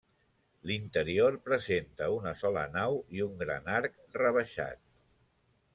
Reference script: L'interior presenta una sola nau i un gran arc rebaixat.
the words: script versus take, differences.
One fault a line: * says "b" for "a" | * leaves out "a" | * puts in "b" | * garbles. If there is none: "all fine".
all fine